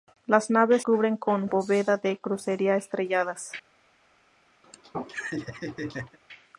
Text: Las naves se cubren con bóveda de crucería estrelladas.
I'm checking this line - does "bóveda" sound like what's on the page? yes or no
yes